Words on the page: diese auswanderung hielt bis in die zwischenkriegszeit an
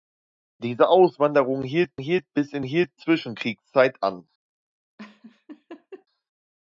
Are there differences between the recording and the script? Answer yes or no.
yes